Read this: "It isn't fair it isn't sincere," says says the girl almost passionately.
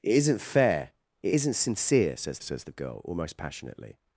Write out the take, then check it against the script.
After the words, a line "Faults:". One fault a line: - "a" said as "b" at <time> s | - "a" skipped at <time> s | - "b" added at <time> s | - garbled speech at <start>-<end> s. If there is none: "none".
"It isn't fair it isn't sincere," says says the girl almost passionately.
Faults:
none